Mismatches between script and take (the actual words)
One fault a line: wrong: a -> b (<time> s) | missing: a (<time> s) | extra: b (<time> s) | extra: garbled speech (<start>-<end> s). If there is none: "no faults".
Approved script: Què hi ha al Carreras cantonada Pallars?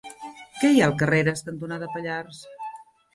no faults